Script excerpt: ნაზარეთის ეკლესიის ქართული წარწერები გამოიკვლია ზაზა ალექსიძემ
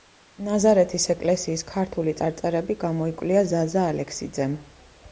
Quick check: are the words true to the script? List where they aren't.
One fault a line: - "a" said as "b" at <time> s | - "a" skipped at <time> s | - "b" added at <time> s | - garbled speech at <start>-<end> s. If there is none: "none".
none